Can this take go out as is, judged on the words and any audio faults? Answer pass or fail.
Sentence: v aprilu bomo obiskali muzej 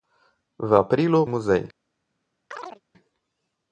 fail